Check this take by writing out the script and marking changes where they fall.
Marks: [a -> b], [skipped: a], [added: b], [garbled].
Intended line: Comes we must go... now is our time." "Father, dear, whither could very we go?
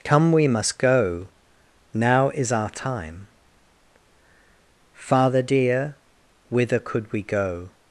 [Comes -> Come] we must go... now is our time." "Father, dear, whither could [skipped: very] we go?